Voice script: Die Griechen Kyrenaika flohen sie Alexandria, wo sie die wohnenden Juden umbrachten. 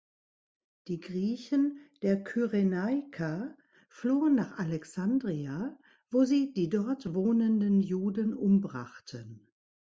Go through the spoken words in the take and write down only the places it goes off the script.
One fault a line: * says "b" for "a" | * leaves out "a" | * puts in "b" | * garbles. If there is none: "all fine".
* puts in "der"
* says "nach" for "sie"
* puts in "dort"